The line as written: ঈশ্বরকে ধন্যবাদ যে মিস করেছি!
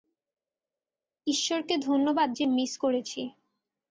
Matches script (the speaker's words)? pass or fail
pass